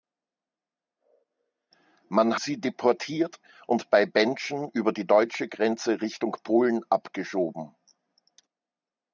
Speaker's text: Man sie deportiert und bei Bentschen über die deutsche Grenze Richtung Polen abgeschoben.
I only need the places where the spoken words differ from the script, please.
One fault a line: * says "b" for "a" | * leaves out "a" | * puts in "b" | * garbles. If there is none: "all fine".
all fine